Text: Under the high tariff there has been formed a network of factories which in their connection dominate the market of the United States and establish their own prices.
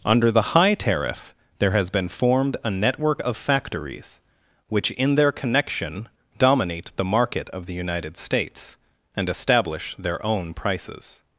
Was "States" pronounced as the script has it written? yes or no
yes